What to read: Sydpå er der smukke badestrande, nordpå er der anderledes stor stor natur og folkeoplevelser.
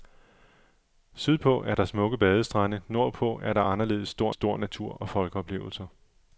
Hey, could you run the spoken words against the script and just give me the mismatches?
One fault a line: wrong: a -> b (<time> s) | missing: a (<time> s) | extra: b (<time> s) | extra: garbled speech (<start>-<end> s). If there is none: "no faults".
no faults